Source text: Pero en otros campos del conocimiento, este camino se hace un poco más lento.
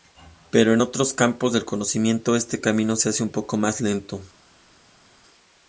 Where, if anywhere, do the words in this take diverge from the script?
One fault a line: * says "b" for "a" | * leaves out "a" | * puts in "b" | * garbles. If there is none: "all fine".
all fine